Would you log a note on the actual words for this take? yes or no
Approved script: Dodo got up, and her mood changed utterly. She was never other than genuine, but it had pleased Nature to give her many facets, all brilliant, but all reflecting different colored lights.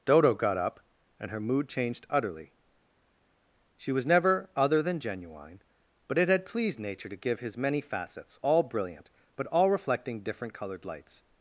yes